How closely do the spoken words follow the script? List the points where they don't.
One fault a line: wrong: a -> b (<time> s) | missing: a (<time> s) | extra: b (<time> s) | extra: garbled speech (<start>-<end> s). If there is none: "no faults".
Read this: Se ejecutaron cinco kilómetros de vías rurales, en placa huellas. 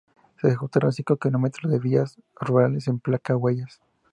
no faults